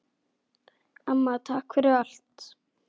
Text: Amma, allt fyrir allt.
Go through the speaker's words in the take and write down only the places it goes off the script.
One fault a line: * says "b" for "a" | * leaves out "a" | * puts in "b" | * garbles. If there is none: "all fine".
* says "takk" for "allt"